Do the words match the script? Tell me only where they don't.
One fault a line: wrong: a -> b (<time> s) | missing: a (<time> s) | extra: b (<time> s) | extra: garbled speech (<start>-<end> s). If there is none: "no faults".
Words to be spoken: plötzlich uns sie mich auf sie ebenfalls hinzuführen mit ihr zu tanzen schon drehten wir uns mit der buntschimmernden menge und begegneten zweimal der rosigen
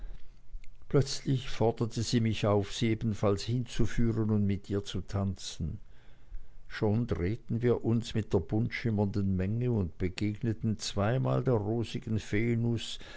wrong: uns -> forderte (1.5 s)
extra: und (4.3 s)